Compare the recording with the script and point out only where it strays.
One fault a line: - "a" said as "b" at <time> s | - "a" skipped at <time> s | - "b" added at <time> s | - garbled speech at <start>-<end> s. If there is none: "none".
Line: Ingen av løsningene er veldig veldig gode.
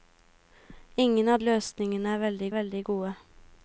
none